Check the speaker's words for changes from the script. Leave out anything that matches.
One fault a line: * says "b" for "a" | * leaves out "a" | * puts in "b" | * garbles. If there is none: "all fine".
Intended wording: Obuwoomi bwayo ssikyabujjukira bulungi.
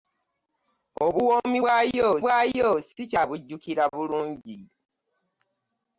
* puts in "bwayo"